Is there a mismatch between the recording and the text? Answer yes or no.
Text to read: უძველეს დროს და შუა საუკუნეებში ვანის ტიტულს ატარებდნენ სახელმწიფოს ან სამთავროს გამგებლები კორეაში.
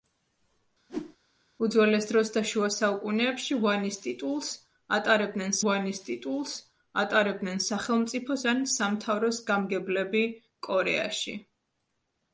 yes